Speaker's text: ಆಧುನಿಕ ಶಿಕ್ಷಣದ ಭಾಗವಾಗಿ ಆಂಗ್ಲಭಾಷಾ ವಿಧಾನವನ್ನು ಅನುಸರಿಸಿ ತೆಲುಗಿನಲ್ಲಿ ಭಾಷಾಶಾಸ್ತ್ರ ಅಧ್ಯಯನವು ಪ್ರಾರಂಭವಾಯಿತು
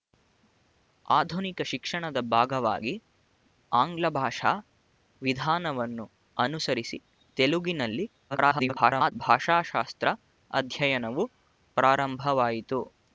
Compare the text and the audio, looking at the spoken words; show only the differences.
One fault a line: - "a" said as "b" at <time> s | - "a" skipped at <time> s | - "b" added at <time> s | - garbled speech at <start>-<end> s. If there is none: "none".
- garbled speech at 8.3-9.1 s